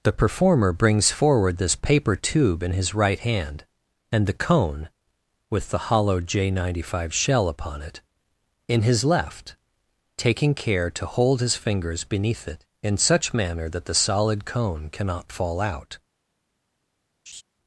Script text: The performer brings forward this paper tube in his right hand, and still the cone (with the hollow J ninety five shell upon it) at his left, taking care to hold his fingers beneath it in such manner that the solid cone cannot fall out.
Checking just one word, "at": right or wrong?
wrong